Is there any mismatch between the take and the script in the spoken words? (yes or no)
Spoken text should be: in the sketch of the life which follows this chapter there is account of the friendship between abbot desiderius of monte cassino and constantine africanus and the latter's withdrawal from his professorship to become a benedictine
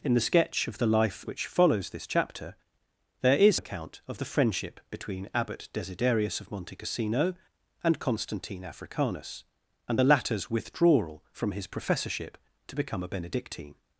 no